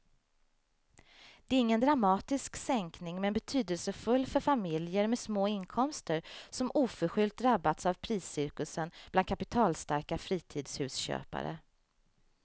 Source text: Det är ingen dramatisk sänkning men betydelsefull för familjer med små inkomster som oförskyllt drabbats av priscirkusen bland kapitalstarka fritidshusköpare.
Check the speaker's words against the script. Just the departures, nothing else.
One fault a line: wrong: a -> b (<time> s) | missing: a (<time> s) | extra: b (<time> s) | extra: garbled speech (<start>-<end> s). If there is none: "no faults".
no faults